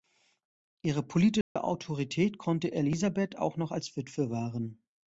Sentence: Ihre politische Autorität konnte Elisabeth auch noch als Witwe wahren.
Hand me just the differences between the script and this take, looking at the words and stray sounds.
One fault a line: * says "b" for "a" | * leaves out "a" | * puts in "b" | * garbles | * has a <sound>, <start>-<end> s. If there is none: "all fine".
* has a dropout, 1.4-1.6 s